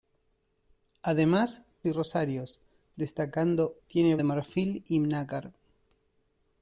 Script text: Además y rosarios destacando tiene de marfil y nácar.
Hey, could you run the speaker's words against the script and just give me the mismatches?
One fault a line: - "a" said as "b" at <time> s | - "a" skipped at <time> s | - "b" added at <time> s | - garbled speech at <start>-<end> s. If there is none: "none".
none